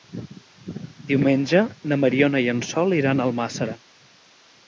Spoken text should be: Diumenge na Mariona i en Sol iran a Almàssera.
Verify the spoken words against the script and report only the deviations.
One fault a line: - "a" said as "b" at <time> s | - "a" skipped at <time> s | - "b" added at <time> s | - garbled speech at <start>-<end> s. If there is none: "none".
none